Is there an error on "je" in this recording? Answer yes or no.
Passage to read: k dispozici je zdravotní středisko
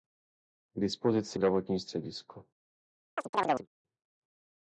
yes